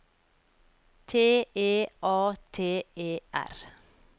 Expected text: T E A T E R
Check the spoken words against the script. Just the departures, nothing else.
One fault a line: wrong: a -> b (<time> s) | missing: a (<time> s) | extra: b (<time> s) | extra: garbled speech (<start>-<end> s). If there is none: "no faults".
no faults